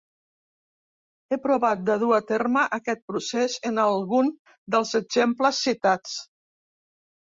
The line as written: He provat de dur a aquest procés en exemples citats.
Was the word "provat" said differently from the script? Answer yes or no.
no